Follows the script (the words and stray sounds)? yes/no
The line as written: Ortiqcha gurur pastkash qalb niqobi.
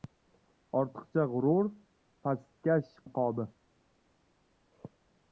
no